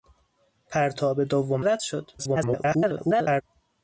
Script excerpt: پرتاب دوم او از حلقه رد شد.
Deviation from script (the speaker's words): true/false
true